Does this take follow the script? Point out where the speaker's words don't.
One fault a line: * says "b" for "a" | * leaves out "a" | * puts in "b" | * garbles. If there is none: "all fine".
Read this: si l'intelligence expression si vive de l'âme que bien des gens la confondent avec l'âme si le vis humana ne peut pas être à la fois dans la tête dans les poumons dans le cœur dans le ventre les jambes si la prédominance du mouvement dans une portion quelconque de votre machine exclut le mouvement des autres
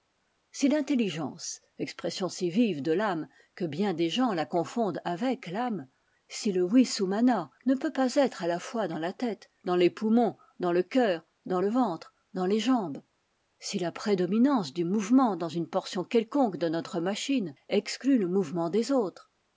* puts in "dans"
* says "notre" for "votre"